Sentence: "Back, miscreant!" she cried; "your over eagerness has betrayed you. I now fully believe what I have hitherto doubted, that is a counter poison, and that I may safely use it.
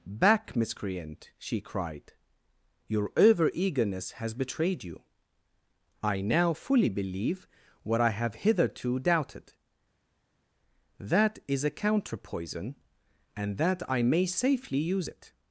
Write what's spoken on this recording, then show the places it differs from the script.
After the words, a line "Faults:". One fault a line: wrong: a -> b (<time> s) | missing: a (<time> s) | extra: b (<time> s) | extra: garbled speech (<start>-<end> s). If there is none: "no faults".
"Back, miscreant!" she cried; "your over eagerness has betrayed you. I now fully believe what I have hitherto doubted, that is a counter poison, and that I may safely use it.
Faults:
no faults